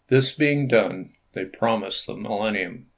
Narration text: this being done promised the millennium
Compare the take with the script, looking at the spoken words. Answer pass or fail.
fail